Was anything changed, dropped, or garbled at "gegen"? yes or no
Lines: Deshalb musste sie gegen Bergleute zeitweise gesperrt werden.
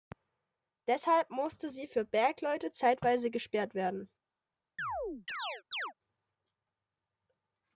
yes